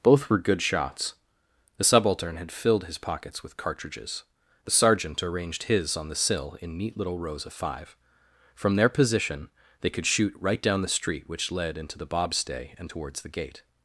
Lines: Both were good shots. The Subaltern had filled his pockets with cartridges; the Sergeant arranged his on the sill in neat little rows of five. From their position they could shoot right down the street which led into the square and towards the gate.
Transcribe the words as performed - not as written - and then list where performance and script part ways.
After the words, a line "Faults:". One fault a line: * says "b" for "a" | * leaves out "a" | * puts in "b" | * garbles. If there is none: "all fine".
Both were good shots. The Subaltern had filled his pockets with cartridges; the Sergeant arranged his on the sill in neat little rows of five. From their position they could shoot right down the street which led into the bobstay and towards the gate.
Faults:
* says "bobstay" for "square"